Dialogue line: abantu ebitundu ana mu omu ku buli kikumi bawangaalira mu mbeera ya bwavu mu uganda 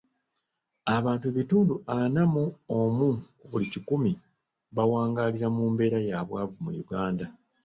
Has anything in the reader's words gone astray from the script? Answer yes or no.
no